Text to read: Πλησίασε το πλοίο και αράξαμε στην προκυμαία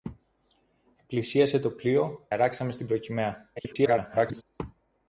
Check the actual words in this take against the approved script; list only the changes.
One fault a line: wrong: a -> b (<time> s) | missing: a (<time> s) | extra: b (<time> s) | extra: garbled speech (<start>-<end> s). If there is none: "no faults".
missing: και (2.3 s)
extra: garbled speech (3.6-4.4 s)